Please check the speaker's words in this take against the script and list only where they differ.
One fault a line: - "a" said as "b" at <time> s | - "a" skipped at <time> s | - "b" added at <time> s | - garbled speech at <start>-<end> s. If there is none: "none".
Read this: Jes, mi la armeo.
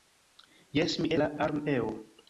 none